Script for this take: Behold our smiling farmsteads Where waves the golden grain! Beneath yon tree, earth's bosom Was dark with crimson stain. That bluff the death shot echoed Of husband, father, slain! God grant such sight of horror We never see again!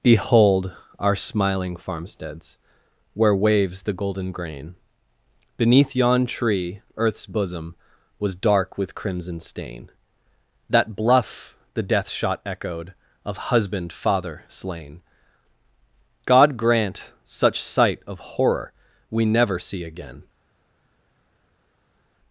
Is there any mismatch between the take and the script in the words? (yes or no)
no